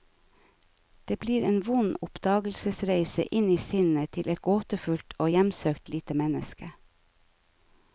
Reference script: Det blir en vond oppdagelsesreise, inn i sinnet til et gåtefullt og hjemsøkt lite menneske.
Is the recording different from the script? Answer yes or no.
no